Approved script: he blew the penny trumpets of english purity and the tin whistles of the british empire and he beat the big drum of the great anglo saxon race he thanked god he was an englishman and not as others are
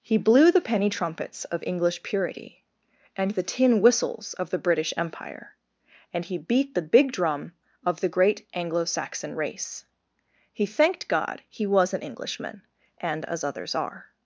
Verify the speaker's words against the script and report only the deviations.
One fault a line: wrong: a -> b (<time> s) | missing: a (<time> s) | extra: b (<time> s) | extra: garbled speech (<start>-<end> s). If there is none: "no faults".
missing: not (13.2 s)